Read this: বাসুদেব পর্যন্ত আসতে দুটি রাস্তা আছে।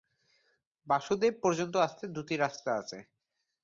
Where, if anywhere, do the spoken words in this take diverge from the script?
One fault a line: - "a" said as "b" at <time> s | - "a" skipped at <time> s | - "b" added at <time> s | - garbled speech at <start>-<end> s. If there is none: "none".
none